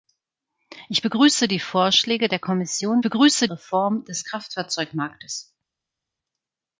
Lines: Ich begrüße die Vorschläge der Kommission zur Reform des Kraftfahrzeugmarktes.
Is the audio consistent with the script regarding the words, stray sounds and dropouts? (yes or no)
no